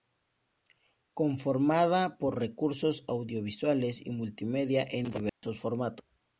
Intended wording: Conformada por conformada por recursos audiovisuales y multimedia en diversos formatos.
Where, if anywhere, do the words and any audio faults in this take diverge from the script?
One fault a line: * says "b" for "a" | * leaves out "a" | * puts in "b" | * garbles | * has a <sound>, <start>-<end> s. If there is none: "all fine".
* leaves out "conformada por"
* has a dropout, 5.3-5.4 s